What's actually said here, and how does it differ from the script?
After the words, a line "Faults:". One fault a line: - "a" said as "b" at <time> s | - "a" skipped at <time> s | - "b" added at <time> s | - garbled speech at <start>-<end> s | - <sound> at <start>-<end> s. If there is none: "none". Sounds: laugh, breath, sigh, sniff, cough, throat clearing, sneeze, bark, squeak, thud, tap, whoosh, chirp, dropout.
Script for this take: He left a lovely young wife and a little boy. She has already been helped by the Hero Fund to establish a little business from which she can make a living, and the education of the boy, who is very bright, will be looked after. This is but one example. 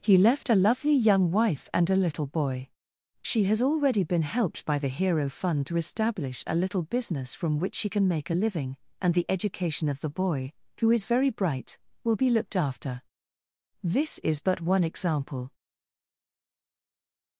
He left a lovely young wife and a little boy. She has already been helped by the Hero Fund to establish a little business from which she can make a living, and the education of the boy, who is very bright, will be looked after. This is but one example.
Faults:
none